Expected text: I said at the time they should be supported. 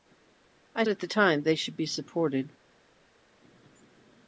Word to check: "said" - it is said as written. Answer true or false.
false